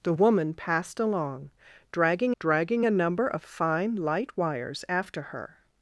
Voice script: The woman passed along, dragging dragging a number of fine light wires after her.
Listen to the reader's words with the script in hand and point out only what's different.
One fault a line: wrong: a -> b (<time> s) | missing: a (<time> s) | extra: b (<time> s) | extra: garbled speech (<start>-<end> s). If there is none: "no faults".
no faults